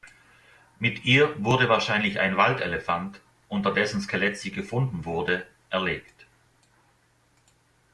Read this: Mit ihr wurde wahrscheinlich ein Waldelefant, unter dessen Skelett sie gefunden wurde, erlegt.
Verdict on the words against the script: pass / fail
pass